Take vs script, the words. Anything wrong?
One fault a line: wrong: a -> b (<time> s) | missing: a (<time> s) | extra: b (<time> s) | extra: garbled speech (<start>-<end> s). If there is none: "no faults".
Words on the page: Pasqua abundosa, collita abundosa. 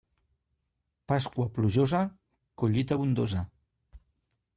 wrong: abundosa -> plujosa (1.5 s)